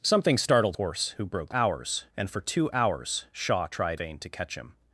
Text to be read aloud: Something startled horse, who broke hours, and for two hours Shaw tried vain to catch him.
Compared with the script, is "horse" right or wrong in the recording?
right